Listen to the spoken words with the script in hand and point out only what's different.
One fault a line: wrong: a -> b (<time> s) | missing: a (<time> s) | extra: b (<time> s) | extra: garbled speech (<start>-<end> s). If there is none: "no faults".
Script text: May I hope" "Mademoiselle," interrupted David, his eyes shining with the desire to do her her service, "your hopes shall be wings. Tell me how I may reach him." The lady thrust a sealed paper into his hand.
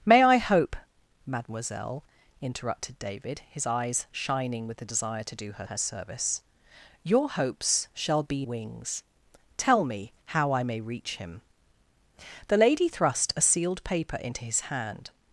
no faults